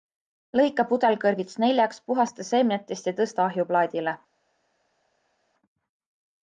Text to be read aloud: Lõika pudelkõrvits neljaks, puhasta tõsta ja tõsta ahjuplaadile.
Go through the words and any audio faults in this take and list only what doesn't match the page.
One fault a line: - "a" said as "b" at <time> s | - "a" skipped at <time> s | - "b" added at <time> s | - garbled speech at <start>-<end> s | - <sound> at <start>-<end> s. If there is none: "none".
- "tõsta" said as "seemnetest" at 2.5 s